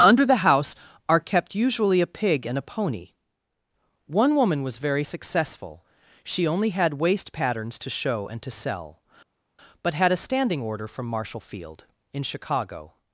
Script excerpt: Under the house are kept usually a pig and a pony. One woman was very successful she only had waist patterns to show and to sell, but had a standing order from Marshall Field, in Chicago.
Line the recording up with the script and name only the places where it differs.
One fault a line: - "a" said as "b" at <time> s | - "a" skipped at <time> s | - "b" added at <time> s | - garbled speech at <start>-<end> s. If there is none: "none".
none